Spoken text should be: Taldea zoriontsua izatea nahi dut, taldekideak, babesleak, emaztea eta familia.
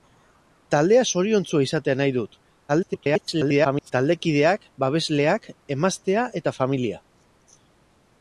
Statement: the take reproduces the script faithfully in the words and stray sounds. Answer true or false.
false